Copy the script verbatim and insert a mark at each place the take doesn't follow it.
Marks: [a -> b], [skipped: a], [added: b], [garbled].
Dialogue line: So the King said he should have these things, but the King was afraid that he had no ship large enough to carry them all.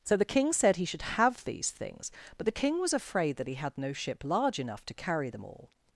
So the King said he should have these things, but the King was afraid that he had no ship large enough to carry them all.